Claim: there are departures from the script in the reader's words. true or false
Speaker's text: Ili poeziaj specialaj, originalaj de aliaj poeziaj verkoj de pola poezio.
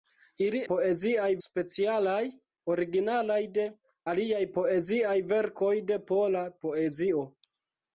false